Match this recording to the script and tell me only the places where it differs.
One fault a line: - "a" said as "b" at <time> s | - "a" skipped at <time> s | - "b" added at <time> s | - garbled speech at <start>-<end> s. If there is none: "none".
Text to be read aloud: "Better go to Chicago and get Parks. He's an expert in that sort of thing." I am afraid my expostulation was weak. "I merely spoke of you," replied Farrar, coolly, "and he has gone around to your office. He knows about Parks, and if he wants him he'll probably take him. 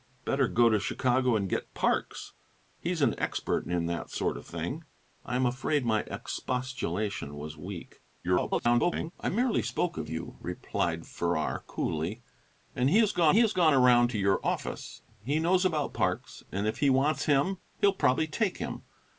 - garbled speech at 8.2-9.1 s
- "he has gone" added at 13.3 s